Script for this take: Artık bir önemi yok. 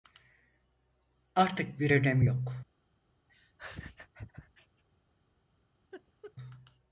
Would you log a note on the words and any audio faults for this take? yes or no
yes